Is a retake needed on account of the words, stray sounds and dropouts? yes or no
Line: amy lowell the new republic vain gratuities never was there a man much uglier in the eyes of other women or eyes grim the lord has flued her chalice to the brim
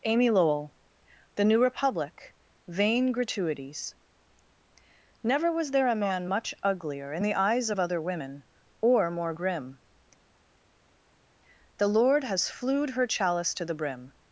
yes